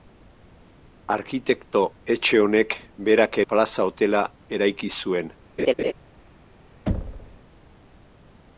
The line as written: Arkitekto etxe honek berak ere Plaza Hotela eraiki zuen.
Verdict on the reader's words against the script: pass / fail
fail